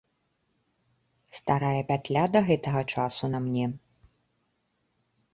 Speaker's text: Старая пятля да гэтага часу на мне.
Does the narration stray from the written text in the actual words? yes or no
no